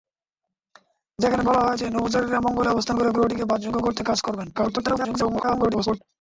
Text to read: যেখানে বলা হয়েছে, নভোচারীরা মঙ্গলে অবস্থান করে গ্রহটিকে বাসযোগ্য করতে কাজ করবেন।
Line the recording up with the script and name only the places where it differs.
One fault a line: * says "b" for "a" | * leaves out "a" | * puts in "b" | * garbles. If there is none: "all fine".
* garbles